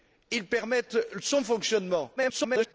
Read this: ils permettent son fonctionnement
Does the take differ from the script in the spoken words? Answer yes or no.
yes